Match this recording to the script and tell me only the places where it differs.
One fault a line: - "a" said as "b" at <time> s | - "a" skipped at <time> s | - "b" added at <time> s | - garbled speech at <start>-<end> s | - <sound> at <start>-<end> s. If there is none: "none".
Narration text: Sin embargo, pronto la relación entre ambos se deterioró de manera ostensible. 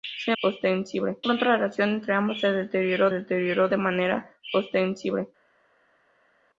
- "embargo" said as "ostensible" at 0.4 s
- "deterioró" added at 3.1 s